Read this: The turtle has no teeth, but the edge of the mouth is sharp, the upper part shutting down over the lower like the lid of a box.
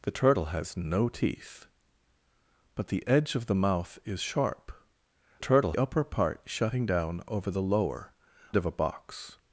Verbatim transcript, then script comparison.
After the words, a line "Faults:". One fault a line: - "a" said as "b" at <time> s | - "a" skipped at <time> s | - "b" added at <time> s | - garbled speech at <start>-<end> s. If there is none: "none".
The turtle has no teeth, but the edge of the mouth is sharp, turtle upper part shutting down over the lower of a box.
Faults:
- "the" said as "turtle" at 5.4 s
- "like the lid" skipped at 8.1 s